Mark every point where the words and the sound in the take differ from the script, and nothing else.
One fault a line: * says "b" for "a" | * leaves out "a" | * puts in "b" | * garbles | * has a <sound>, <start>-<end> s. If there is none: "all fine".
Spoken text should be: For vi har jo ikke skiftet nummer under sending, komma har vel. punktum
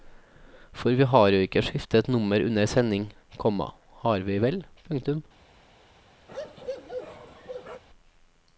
* puts in "vi"
* has a bark, 6.3-7.8 s